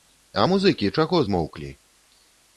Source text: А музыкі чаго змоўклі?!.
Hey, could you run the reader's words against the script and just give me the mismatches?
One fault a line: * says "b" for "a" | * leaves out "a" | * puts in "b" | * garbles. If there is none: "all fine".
all fine